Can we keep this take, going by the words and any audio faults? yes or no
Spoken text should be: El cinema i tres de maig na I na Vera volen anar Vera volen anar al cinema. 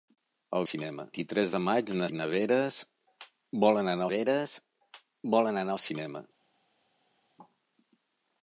yes